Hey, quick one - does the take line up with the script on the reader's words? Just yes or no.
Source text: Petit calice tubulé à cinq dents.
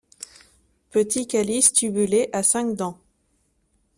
yes